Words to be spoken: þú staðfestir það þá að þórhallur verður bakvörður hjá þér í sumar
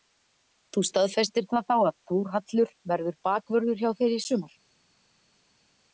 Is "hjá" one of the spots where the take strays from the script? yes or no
no